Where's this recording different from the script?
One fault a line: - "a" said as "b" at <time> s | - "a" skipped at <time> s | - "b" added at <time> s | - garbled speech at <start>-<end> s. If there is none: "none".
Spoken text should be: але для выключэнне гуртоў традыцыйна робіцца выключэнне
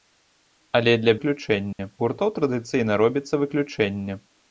none